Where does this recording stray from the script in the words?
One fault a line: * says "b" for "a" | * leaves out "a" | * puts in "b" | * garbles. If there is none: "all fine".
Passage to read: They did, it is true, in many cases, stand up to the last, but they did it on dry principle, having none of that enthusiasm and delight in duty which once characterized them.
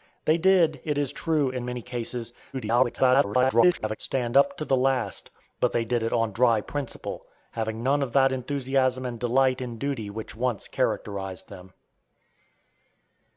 * garbles